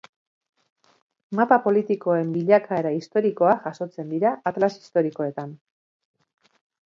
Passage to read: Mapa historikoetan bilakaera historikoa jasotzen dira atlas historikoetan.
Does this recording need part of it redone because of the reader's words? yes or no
yes